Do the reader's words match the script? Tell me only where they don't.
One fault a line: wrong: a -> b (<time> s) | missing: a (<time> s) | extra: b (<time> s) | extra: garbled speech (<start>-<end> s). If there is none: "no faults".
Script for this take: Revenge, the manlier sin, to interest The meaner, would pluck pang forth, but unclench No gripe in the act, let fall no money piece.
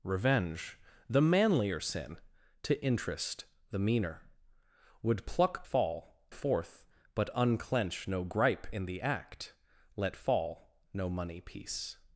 wrong: pang -> fall (5.6 s)